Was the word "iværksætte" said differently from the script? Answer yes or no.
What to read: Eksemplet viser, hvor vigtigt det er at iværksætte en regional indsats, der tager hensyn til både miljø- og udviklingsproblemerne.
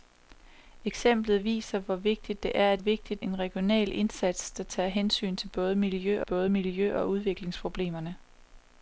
yes